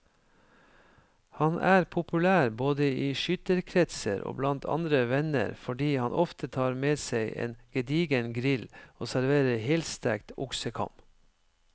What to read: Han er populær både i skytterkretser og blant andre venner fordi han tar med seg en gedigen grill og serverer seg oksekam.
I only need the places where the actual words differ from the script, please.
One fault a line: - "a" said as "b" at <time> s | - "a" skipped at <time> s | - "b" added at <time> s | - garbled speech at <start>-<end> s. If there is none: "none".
- "ofte" added at 6.2 s
- "seg" said as "helstekt" at 9.7 s